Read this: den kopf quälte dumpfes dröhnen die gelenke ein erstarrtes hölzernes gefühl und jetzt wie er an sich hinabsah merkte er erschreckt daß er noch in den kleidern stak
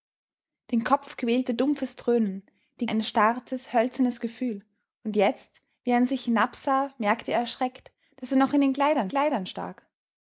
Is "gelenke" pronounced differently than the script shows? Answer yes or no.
yes